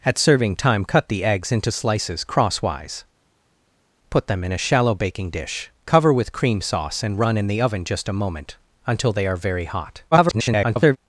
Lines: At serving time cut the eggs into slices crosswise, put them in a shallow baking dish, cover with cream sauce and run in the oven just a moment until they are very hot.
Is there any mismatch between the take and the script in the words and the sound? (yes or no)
yes